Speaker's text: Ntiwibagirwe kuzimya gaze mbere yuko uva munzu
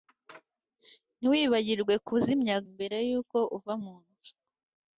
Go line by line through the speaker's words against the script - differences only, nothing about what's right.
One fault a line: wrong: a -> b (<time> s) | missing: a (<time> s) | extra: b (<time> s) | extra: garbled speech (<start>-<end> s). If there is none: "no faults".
missing: gaze (2.6 s)